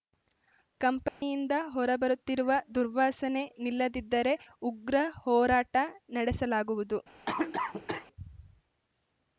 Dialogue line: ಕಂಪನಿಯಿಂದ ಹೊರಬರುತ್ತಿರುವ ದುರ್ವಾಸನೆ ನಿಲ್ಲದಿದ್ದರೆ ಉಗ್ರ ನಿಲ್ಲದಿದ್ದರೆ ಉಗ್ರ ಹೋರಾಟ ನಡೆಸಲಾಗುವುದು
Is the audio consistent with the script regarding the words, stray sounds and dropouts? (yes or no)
no